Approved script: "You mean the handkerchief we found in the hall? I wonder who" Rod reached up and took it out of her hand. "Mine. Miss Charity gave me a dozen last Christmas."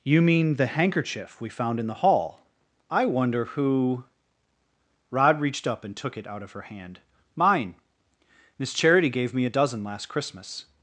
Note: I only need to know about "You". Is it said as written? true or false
true